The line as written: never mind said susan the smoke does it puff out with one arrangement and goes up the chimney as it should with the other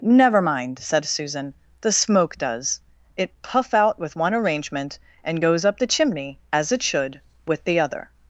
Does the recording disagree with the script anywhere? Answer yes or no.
no